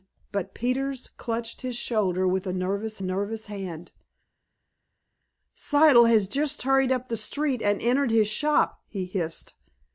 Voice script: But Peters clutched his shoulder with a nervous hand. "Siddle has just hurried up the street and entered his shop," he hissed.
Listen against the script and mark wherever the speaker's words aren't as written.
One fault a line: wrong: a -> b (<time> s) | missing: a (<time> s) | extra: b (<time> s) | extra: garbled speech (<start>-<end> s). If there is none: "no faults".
extra: nervous (3.0 s)